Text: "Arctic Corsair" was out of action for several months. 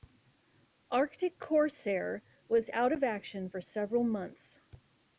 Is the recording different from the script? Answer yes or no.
no